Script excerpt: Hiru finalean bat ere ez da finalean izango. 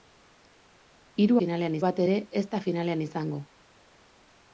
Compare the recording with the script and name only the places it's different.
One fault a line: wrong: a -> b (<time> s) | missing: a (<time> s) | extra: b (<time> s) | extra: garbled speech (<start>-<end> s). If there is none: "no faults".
no faults